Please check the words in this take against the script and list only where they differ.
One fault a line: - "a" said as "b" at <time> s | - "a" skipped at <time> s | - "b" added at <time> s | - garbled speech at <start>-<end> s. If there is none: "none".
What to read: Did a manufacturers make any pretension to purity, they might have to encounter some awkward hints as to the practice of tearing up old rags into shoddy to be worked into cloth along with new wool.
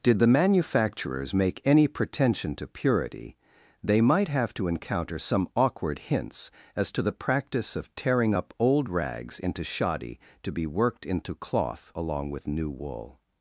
- "a" said as "the" at 0.2 s